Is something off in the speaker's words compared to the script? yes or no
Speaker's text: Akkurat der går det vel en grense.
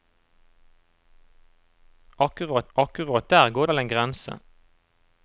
yes